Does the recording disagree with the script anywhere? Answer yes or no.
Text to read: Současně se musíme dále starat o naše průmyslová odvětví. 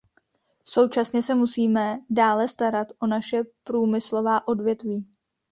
no